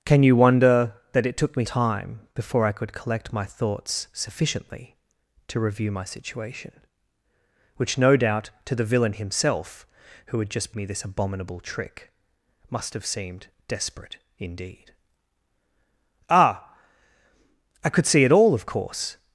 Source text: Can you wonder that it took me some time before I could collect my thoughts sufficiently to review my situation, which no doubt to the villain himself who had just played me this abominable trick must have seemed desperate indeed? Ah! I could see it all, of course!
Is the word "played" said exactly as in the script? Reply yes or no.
no